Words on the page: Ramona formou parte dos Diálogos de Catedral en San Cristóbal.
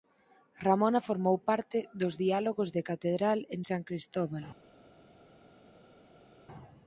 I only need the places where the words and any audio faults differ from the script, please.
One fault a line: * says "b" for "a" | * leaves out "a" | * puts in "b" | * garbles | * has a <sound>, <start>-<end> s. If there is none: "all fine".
all fine